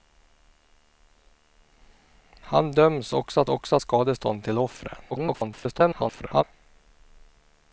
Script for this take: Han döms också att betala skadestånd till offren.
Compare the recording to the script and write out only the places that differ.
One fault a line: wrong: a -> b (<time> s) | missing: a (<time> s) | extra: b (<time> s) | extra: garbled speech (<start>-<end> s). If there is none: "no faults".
wrong: betala -> också (3.5 s)
extra: garbled speech (5.1-6.4 s)